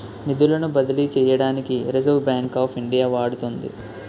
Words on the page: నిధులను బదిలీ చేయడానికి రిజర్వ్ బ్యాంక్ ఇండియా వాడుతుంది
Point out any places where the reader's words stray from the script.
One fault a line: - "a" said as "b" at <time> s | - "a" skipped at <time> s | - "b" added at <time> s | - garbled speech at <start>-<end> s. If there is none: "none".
- "ఆఫ్" added at 2.6 s